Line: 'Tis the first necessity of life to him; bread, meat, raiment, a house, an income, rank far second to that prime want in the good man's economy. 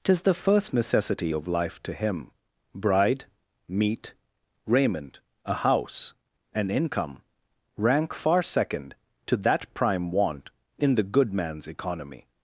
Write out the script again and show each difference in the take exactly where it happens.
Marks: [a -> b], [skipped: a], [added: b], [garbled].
'Tis the first necessity of life to him; [bread, -> bride] meat, raiment, a house, an income, rank far second to that prime want in the good man's economy.